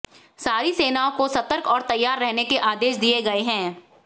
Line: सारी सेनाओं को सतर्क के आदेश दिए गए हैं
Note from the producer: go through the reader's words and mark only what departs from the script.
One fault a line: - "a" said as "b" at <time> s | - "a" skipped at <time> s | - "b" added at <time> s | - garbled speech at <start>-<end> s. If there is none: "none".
- "और तैयार रहने" added at 1.7 s